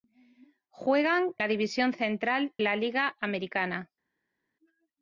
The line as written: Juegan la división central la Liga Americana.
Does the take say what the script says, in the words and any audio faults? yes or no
yes